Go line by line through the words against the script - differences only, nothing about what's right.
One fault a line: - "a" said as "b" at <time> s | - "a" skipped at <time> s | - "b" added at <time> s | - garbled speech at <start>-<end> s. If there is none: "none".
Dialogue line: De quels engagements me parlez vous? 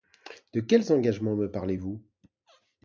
none